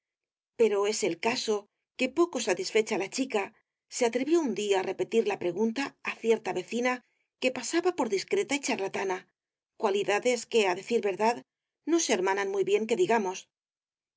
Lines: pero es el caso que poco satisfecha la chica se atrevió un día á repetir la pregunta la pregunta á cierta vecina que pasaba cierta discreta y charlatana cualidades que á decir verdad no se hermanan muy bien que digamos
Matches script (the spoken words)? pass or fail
fail